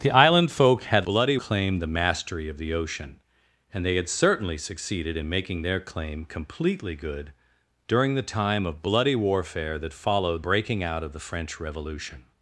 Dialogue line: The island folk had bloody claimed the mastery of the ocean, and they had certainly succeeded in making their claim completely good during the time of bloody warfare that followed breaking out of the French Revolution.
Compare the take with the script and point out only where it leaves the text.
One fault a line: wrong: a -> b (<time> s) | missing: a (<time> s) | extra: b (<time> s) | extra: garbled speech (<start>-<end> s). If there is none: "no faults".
no faults